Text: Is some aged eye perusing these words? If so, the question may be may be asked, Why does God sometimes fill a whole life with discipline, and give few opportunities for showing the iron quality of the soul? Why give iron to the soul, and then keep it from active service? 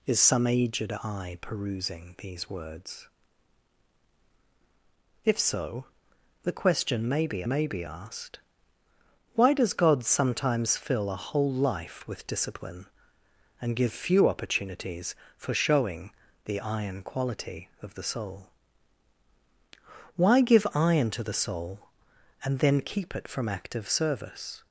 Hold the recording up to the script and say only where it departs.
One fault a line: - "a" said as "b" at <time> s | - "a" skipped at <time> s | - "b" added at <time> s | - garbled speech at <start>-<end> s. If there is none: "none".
none